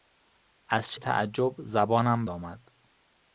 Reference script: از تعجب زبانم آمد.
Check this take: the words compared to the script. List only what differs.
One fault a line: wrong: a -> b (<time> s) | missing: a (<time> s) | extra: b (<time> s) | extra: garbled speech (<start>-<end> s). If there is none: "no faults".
no faults